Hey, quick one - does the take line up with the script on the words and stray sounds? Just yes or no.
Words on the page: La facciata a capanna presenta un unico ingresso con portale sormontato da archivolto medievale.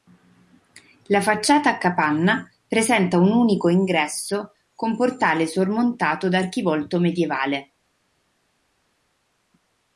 yes